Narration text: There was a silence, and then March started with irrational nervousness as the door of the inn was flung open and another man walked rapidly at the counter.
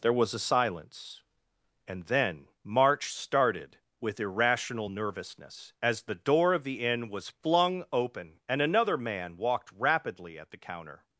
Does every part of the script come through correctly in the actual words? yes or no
yes